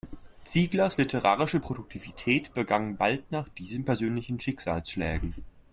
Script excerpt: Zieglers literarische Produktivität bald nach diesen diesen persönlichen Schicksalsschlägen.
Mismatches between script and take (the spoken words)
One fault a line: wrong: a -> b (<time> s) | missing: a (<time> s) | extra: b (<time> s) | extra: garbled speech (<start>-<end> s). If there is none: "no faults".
extra: begann (2.5 s)
missing: diesen (3.8 s)